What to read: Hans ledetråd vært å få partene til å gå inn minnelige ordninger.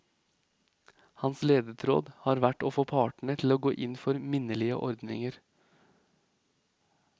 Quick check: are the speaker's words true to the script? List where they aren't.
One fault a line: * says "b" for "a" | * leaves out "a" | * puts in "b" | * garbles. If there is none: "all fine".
* puts in "har"
* puts in "for"